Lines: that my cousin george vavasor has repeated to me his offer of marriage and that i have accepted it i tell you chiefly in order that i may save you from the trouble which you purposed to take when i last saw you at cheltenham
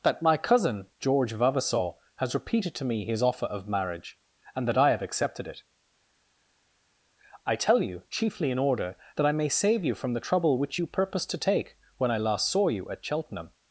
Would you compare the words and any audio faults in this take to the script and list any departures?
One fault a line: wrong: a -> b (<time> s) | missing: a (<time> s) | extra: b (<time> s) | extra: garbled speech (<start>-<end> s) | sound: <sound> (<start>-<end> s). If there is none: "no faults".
no faults